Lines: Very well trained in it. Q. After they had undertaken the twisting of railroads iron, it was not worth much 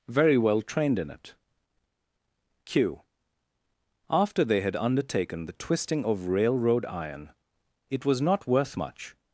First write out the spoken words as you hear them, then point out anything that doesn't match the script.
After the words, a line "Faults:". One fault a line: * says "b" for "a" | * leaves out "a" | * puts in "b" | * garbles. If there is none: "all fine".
Very well trained in it. Q. After they had undertaken the twisting of railroad iron, it was not worth much
Faults:
* says "railroad" for "railroads"